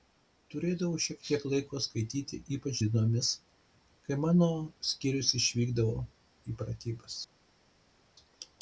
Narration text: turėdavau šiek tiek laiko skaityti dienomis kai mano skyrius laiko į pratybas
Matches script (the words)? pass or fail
fail